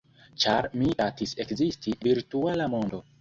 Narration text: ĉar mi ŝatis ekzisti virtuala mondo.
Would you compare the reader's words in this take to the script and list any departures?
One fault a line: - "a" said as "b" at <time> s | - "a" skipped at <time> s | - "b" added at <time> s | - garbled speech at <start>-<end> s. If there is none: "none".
none